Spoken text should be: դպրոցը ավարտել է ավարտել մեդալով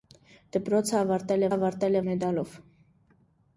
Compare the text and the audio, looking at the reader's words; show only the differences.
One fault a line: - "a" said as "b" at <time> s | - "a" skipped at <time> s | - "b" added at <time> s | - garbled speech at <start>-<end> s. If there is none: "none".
none